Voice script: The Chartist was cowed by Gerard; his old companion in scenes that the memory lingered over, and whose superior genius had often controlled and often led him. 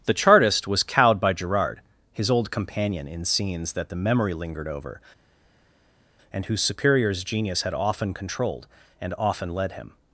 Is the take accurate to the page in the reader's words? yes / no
no